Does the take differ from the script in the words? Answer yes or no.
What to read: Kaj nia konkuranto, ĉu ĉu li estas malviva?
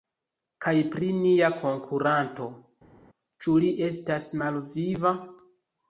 yes